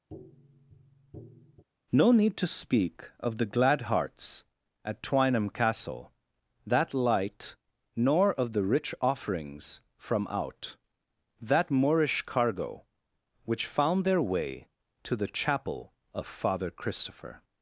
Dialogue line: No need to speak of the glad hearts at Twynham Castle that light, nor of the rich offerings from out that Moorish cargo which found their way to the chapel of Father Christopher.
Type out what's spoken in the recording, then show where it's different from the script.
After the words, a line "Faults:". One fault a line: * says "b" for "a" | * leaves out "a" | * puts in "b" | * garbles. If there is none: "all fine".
No need to speak of the glad hearts at Twynham Castle that light, nor of the rich offerings from out that Moorish cargo which found their way to the chapel of Father Christopher.
Faults:
all fine